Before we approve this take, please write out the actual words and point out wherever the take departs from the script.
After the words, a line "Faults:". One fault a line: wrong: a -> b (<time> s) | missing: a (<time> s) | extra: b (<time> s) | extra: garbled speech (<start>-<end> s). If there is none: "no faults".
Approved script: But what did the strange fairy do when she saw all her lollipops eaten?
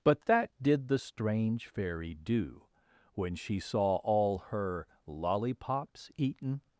But that did the strange fairy do when she saw all her lollipops eaten?
Faults:
wrong: what -> that (0.2 s)